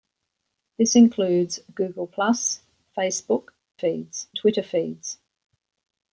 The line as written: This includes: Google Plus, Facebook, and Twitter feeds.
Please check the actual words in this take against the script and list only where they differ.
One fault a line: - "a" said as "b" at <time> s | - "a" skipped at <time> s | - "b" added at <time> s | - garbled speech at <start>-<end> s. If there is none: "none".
- "and" said as "feeds" at 3.8 s